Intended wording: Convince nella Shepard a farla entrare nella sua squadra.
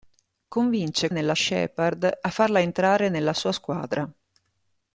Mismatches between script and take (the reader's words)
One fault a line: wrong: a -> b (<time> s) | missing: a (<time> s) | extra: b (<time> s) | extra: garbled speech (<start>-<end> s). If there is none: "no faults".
no faults